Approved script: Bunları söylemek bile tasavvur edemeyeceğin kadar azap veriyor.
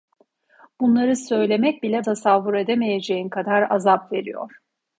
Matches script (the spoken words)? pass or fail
pass